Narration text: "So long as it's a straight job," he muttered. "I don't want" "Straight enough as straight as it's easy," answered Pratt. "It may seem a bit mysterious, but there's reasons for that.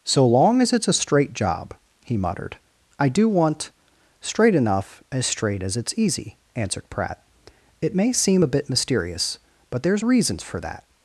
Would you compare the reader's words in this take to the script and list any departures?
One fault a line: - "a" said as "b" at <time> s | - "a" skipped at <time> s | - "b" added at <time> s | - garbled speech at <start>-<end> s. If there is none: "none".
- "don't" said as "do" at 3.1 s